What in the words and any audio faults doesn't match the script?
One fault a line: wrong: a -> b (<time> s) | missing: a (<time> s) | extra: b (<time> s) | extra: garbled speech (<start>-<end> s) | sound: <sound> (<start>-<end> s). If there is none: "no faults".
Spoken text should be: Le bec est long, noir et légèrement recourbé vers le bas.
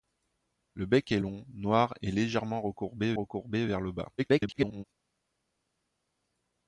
extra: recourbé (3.1 s)
extra: garbled speech (4.2-4.8 s)